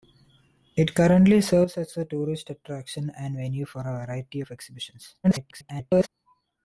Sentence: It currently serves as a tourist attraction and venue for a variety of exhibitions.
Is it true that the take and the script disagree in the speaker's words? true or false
true